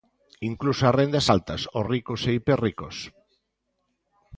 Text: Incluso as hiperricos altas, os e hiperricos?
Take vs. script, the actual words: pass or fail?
fail